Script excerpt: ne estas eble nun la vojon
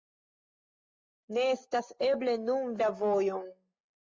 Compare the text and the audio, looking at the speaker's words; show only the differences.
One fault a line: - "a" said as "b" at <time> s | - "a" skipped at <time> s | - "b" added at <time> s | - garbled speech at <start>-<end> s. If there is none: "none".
none